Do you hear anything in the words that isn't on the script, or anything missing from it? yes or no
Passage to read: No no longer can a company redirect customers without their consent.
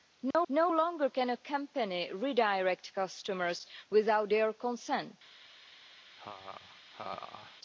no